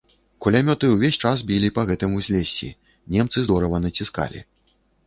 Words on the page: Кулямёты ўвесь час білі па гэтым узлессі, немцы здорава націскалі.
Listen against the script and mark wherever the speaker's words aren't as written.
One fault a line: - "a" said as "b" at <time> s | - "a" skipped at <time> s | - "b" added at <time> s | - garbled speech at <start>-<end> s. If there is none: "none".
none